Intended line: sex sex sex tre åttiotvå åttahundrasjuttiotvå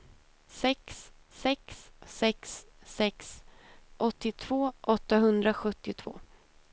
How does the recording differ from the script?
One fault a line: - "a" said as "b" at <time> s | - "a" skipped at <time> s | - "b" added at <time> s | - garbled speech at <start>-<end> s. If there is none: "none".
- "tre" said as "sex" at 2.8 s